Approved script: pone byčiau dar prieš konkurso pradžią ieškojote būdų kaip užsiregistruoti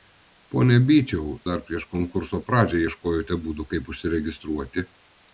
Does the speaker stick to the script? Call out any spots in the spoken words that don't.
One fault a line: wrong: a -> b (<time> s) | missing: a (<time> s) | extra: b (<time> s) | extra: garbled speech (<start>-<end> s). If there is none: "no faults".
no faults